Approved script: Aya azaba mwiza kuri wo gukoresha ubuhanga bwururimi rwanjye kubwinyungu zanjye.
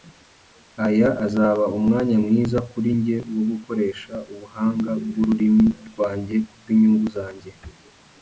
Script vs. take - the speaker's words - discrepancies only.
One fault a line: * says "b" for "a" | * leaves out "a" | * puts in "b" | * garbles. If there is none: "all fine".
* puts in "umwanya"
* puts in "njye"